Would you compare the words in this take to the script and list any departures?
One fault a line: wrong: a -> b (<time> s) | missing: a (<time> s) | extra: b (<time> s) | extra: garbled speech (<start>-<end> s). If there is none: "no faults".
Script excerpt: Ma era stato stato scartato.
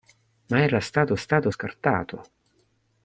no faults